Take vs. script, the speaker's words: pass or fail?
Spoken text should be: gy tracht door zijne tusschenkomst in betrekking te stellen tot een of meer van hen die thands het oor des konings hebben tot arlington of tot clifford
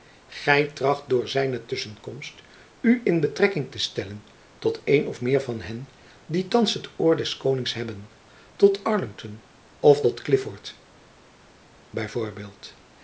fail